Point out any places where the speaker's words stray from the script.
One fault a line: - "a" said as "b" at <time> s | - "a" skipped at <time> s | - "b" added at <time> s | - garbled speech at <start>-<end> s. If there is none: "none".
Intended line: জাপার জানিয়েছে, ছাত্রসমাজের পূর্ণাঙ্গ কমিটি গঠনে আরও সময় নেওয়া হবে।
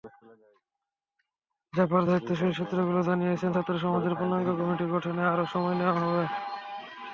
- "দায়িত্বশীল সূত্রগুলো" added at 2.1 s